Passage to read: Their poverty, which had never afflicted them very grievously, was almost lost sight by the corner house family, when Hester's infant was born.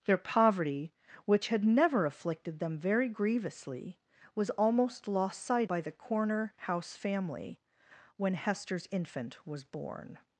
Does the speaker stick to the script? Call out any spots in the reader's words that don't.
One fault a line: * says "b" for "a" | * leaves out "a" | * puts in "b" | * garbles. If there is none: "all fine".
all fine